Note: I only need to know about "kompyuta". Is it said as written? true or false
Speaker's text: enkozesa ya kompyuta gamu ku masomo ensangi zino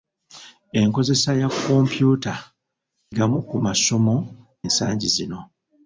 true